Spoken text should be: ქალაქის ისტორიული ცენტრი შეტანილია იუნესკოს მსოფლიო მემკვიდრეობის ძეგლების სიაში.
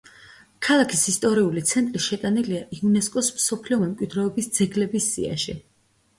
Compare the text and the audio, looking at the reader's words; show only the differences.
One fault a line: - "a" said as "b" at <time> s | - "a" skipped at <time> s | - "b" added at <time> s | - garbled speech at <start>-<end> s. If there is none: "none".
none